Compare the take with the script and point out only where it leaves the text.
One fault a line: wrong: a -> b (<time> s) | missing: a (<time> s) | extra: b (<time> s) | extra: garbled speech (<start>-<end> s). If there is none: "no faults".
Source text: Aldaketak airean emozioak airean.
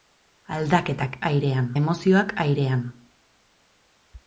no faults